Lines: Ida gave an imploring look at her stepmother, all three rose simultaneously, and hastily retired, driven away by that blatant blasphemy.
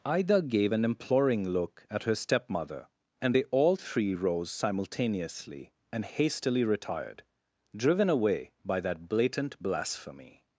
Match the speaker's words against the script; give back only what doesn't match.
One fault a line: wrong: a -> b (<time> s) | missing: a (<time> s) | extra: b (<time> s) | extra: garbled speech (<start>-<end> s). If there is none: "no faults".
extra: and they (3.2 s)